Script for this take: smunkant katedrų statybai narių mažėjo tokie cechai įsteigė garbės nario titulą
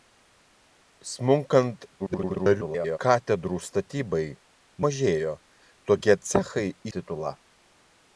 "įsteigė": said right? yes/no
no